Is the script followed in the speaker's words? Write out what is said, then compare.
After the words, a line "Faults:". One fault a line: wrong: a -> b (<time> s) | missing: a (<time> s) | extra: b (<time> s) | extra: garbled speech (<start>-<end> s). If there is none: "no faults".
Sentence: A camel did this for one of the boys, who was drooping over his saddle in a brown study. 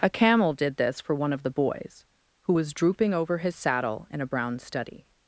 A camel did this for one of the boys, who was drooping over his saddle in a brown study.
Faults:
no faults